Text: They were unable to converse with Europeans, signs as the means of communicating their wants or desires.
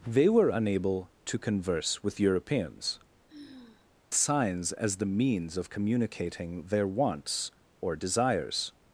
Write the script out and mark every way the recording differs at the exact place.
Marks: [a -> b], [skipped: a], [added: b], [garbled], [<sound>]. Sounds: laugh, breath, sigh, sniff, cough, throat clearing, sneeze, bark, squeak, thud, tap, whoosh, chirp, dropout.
They were unable to converse with Europeans, [sigh] signs as the means of communicating their wants or desires.